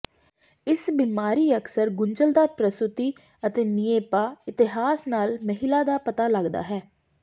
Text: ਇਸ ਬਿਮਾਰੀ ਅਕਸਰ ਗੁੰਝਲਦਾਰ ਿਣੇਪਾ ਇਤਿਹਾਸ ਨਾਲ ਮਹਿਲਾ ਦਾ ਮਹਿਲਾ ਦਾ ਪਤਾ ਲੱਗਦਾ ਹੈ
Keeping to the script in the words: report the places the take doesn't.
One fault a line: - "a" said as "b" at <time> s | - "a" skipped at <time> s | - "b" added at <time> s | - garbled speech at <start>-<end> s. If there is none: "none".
- "ਪ੍ਰਸੂਤੀ ਅਤੇ" added at 2.6 s
- "ਮਹਿਲਾ ਦਾ" skipped at 6.0 s